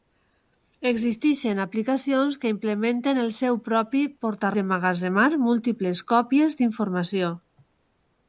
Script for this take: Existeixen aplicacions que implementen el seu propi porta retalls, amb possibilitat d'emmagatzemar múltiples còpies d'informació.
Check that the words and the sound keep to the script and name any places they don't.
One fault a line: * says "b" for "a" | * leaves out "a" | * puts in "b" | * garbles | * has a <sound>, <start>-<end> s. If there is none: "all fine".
* leaves out "retalls amb possibilitat"